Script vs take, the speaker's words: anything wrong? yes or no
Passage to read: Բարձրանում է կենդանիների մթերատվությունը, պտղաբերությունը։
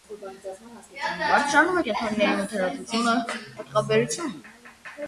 no